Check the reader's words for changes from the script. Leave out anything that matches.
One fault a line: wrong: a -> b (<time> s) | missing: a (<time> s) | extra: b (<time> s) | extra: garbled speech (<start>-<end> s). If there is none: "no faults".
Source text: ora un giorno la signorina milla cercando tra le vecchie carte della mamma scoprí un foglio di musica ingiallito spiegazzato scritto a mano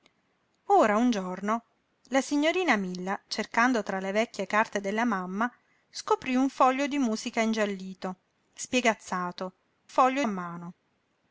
wrong: scritto -> foglio (9.9 s)